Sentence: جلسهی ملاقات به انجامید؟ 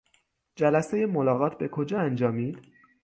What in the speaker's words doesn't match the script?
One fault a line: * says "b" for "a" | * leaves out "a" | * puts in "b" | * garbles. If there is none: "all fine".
* puts in "کجا"